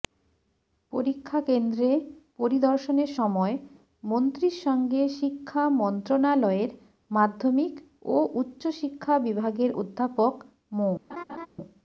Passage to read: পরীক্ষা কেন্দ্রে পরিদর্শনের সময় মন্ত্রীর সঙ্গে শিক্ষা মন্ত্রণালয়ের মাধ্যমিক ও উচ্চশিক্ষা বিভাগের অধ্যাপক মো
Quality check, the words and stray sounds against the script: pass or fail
fail